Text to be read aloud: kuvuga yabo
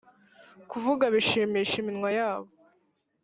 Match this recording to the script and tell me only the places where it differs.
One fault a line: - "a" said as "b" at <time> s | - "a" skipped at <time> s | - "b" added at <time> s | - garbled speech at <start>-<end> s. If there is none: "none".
- "bishimisha iminwa" added at 1.1 s